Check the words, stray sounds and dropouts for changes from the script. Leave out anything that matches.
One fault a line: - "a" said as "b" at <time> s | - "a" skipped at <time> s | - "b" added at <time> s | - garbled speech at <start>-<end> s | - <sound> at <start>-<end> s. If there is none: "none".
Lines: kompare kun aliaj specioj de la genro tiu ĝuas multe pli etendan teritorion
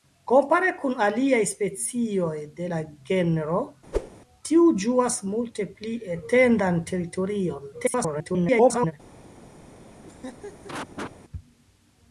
- whoosh at 3.9-4.1 s
- garbled speech at 7.7-8.9 s
- laugh at 10.0-11.1 s